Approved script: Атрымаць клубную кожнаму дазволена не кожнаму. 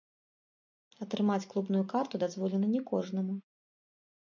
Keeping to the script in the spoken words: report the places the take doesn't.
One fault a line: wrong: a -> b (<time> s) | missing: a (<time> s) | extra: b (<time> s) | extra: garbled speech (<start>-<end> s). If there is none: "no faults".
wrong: кожнаму -> карту (1.9 s)